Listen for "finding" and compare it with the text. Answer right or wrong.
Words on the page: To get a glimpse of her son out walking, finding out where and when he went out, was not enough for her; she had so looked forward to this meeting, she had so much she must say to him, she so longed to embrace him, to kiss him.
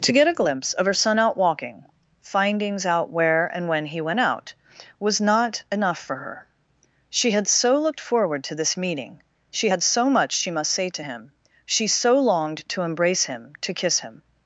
wrong